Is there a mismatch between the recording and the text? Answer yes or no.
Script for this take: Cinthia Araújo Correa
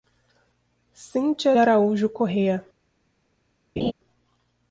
no